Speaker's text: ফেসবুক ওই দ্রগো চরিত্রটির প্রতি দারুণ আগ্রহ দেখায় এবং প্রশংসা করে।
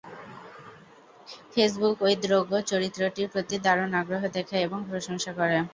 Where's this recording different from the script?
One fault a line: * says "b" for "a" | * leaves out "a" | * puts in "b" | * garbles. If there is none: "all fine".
all fine